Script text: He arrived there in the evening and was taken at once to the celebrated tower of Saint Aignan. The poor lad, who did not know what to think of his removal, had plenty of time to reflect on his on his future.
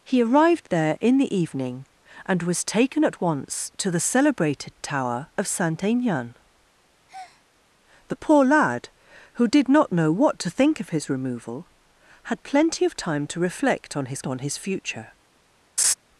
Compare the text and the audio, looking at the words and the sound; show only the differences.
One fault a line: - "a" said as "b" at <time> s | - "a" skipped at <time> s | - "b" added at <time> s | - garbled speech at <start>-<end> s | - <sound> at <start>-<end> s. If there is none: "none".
- breath at 7.1-7.4 s
- laugh at 15.8-15.9 s